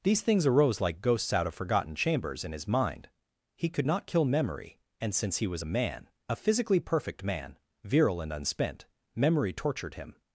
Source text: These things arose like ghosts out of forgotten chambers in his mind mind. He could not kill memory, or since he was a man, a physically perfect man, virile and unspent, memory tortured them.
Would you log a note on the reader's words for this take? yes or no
yes